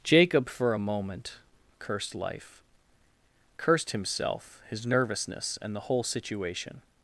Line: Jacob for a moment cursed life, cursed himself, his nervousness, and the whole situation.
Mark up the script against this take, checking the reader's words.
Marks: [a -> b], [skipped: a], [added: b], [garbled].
Jacob for a moment cursed life, cursed himself, his nervousness, and the whole situation.